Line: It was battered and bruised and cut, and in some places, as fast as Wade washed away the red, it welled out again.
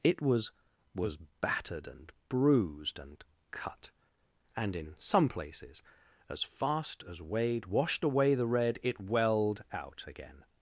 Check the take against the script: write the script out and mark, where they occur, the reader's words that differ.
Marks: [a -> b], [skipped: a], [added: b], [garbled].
It was [added: was] battered and bruised and cut, and in some places, as fast as Wade washed away the red, it welled out again.